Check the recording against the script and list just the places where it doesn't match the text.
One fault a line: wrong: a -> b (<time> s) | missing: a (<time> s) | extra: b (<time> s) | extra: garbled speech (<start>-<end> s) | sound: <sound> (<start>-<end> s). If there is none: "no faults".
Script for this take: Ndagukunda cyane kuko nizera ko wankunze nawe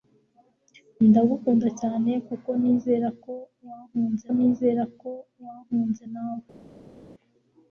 extra: nizera ko wankunze (4.4 s)